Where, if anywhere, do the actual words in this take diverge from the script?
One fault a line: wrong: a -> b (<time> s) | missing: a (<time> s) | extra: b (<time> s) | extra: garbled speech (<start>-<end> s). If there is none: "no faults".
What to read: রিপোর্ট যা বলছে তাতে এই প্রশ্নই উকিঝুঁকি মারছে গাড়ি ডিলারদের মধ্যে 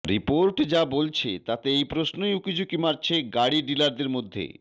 no faults